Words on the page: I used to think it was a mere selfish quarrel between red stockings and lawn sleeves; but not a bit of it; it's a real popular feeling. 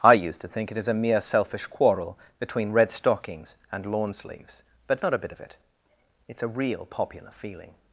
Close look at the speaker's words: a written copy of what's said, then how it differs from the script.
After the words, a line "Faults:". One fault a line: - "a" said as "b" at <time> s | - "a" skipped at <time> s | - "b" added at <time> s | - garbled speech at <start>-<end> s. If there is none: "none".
I used to think it is a mere selfish quarrel between red stockings and lawn sleeves; but not a bit of it; it's a real popular feeling.
Faults:
- "was" said as "is" at 0.8 s